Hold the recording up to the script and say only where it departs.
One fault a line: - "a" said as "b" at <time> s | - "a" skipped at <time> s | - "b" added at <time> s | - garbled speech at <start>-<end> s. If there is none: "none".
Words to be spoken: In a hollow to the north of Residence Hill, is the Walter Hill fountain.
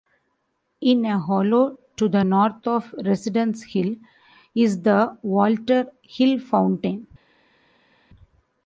none